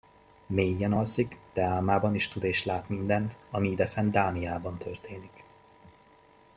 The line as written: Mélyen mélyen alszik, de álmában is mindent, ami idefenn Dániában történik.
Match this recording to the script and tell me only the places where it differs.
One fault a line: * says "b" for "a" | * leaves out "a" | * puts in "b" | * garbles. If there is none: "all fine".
* leaves out "mélyen"
* puts in "tud és lát"